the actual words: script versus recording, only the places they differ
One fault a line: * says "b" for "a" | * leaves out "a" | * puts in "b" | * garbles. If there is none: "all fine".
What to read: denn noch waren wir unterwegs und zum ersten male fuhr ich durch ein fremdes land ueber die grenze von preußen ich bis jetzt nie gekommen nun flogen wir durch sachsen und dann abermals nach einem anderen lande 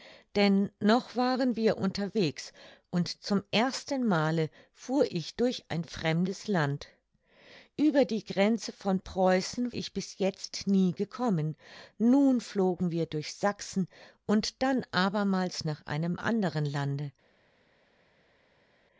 all fine